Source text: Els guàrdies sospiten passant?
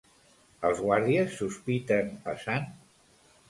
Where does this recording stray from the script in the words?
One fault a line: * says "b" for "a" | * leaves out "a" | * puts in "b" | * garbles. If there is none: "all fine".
all fine